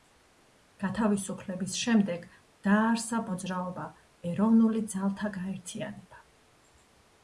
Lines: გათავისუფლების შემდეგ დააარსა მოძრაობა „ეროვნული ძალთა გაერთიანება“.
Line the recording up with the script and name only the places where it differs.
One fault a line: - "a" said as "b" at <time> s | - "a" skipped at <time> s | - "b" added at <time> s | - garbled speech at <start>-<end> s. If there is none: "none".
none